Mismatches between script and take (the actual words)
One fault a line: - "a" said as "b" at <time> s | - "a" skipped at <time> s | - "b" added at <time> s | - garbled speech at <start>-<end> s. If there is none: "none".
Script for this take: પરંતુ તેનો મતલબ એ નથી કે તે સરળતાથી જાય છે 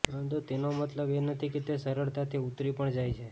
- "ઉતરી પણ" added at 2.5 s